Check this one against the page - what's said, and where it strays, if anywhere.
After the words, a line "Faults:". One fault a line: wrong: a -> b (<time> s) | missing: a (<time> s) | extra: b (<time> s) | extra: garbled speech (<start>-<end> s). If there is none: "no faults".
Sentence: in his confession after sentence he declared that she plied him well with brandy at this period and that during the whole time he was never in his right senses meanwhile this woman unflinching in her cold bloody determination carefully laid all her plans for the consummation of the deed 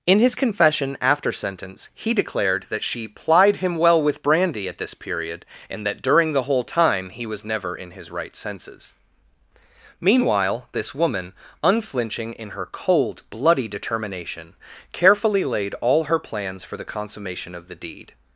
in his confession after sentence he declared that she plied him well with brandy at this period and that during the whole time he was never in his right senses meanwhile this woman unflinching in her cold bloody determination carefully laid all her plans for the consummation of the deed
Faults:
no faults